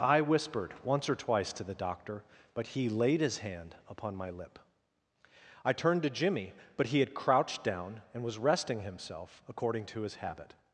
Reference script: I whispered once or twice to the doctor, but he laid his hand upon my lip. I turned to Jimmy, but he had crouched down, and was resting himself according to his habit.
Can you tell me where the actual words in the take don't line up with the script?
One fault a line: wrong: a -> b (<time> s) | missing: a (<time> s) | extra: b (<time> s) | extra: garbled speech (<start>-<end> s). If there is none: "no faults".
no faults